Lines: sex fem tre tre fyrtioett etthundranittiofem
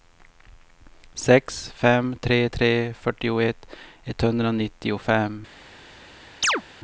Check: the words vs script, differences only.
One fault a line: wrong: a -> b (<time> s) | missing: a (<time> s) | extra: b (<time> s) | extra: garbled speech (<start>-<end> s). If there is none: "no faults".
no faults